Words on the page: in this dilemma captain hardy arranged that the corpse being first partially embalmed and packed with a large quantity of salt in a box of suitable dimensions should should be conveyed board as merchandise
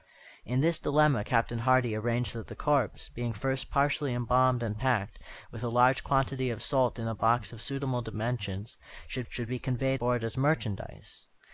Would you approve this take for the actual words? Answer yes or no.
yes